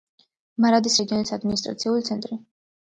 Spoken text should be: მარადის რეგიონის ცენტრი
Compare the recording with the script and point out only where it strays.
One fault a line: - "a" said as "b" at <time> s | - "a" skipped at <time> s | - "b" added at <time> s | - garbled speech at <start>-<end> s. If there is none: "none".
- "ადმინისტრაციული" added at 1.4 s